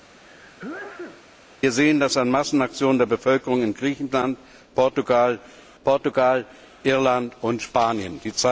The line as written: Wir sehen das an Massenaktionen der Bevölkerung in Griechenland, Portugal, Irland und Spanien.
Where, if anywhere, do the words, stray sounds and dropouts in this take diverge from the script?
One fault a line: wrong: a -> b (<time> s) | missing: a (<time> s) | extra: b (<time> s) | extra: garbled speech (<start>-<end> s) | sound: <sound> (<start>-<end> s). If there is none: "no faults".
sound: sneeze (0.2-1.3 s)
extra: Portugal (5.8 s)